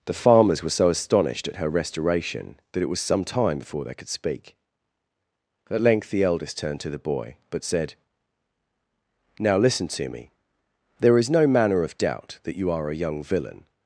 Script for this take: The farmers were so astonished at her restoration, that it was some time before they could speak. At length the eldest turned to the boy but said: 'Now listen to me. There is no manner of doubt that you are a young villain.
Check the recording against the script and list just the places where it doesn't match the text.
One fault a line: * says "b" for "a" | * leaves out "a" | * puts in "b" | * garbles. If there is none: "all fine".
all fine